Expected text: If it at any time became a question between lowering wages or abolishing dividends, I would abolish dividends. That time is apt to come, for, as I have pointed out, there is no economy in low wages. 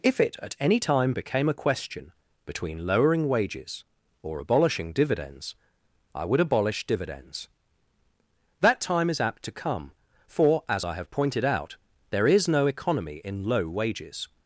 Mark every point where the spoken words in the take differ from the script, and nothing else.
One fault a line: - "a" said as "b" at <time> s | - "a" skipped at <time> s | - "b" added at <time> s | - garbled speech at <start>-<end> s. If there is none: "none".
none